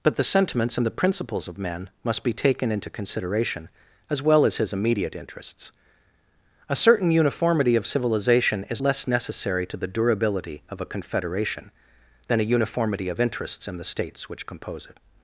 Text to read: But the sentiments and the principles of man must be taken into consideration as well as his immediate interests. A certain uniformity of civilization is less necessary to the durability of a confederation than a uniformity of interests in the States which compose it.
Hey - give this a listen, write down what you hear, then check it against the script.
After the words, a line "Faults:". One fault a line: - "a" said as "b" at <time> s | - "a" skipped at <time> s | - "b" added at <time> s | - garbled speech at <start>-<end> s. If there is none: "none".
But the sentiments and the principles of man must be taken into consideration as well as his immediate interests. A certain uniformity of civilization is less necessary to the durability of a confederation than a uniformity of interests in the States which compose it.
Faults:
none